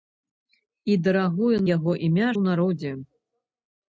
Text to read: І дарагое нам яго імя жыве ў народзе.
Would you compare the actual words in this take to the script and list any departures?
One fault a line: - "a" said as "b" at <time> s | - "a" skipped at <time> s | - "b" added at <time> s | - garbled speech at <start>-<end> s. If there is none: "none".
- "нам" skipped at 1.6 s
- "жыве" skipped at 2.3 s